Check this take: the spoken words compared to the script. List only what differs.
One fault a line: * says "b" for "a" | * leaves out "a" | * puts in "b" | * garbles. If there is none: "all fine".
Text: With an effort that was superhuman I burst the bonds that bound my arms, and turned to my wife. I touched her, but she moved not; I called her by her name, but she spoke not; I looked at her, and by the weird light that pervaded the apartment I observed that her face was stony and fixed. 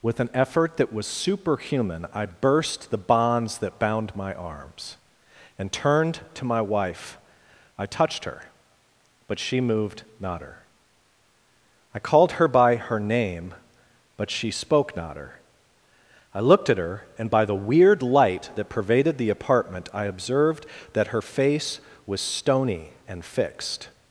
* puts in "her"
* puts in "her"